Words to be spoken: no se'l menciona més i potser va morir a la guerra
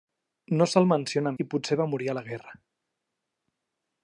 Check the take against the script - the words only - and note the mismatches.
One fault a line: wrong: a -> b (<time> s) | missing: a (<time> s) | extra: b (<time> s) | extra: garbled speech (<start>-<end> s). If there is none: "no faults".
missing: més (1.3 s)